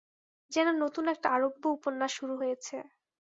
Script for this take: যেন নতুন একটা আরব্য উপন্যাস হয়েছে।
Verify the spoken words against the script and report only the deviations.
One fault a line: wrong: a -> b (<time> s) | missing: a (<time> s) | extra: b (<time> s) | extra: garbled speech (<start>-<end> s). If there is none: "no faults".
extra: শুরু (2.2 s)